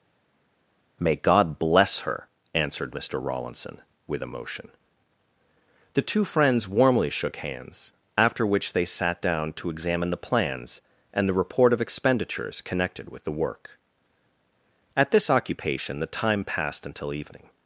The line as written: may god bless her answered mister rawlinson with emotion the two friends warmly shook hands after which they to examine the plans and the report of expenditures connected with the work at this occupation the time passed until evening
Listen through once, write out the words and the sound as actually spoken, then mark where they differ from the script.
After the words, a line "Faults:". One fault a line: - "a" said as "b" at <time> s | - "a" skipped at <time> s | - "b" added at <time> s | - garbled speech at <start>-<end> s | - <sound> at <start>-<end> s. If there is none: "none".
may god bless her answered mister rawlinson with emotion the two friends warmly shook hands after which they sat down to examine the plans and the report of expenditures connected with the work at this occupation the time passed until evening
Faults:
- "sat down" added at 8.8 s